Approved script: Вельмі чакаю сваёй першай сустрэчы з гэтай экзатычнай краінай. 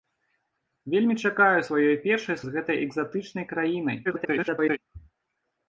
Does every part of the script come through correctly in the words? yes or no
no